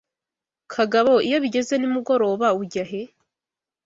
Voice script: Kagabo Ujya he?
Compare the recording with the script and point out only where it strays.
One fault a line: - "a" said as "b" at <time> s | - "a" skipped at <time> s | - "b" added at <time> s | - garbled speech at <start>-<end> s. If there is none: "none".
- "iyo bigeze nimugoroba" added at 1.3 s